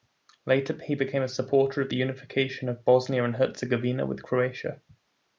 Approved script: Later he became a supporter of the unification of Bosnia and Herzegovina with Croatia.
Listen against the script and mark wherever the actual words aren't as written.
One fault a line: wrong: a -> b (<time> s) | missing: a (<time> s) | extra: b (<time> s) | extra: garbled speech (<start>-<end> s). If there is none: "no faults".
no faults